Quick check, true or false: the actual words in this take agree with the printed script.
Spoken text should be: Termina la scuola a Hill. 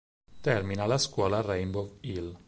false